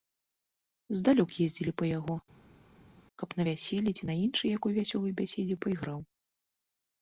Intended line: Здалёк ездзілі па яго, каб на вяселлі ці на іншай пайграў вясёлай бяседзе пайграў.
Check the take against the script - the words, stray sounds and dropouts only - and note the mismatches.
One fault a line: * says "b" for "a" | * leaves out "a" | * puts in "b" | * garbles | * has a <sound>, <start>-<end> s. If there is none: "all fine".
* says "якой" for "пайграў"